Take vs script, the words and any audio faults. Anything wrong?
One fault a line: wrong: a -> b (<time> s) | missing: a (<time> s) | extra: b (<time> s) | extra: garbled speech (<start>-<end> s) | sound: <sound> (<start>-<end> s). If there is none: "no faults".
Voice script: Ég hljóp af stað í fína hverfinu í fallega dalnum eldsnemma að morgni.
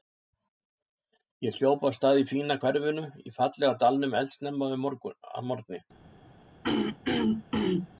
sound: throat clearing (6.6-7.9 s)